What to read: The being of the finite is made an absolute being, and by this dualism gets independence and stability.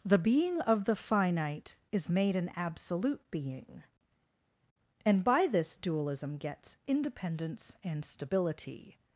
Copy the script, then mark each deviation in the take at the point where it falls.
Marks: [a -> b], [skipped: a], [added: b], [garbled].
The being of the finite is made an absolute being, and by this dualism gets independence and stability.